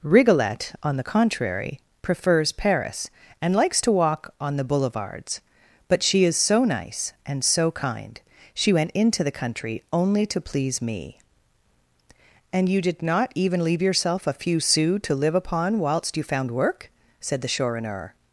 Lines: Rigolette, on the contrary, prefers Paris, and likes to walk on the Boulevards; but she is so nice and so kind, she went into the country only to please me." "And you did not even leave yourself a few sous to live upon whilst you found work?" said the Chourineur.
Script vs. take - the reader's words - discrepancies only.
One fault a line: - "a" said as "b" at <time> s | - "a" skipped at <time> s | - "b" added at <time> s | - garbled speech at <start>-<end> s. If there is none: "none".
none